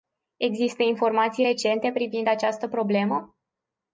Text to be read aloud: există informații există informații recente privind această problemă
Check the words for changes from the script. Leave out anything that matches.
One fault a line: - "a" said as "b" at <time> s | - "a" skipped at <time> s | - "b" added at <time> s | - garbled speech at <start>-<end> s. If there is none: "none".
- "există informații" skipped at 1.4 s